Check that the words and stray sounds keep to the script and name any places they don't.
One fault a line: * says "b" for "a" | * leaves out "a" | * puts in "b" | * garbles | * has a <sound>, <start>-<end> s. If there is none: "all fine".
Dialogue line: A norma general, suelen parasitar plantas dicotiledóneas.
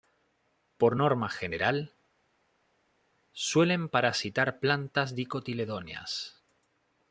* says "Por" for "A"